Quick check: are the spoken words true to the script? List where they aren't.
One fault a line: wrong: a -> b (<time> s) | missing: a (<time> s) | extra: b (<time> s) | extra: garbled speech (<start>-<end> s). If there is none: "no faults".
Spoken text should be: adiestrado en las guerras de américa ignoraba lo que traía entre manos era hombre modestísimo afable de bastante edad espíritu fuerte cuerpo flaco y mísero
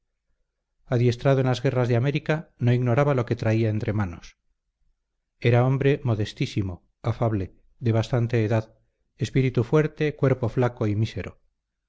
extra: no (2.6 s)